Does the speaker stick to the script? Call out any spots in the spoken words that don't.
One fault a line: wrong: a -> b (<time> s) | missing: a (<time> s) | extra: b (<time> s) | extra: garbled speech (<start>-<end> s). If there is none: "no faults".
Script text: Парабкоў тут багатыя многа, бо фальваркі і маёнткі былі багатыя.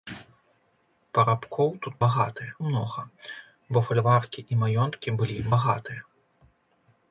no faults